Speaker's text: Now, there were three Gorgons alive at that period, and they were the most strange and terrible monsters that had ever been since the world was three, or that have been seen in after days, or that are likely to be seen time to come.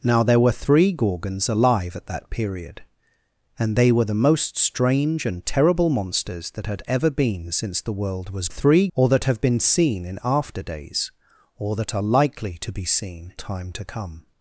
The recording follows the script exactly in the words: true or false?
true